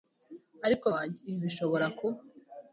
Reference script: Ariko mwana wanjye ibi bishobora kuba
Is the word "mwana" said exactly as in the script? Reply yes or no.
no